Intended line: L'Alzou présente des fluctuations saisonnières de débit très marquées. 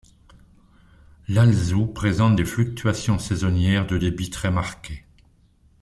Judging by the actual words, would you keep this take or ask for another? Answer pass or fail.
pass